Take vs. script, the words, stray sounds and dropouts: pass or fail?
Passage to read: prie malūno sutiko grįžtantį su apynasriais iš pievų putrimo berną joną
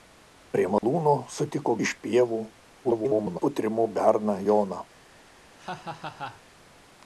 fail